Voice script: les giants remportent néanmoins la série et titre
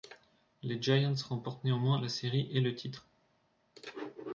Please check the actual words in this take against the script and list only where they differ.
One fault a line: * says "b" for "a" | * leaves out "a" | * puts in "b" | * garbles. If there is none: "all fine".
* puts in "le"